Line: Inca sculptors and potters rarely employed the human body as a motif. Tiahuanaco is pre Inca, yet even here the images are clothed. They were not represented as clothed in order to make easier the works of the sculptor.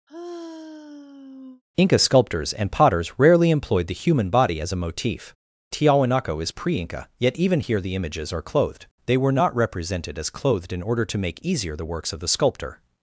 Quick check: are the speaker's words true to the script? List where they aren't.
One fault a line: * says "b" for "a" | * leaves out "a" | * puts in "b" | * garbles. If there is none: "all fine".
all fine